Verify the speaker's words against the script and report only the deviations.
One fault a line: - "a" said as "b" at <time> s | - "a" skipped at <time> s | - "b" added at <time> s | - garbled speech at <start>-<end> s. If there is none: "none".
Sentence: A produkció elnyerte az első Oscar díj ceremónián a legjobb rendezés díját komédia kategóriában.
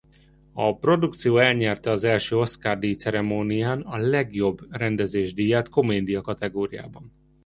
none